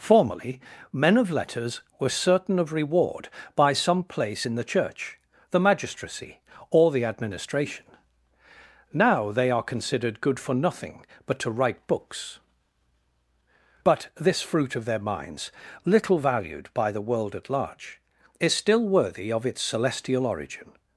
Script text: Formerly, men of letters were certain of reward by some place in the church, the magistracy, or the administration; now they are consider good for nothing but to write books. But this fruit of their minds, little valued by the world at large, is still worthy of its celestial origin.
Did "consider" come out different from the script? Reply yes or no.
yes